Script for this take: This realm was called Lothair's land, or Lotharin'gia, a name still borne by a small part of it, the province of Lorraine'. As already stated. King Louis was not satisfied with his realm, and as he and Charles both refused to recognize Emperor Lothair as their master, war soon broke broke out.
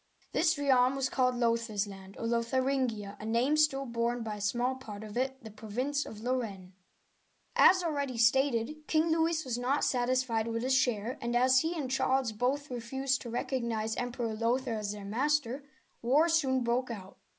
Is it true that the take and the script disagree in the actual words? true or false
true